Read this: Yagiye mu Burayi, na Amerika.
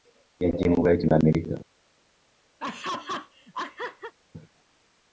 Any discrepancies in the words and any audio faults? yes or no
yes